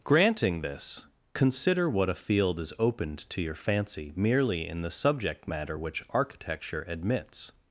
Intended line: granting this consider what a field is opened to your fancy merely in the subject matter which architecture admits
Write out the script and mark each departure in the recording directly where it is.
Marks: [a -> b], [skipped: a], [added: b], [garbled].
granting this consider what a field is opened to your fancy merely in the subject matter which architecture admits